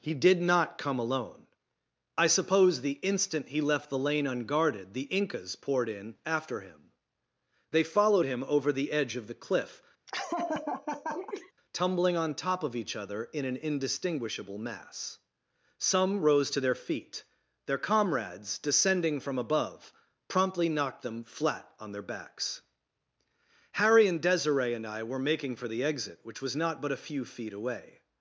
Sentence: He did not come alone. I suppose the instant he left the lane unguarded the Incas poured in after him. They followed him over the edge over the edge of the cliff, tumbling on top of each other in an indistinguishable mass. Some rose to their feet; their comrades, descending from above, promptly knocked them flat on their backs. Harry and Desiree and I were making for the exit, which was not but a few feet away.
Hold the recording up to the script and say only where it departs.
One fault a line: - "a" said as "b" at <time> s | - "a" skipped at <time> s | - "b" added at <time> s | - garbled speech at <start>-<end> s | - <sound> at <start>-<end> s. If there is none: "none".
- "over the edge" skipped at 9.2 s
- laugh at 10.1-11.5 s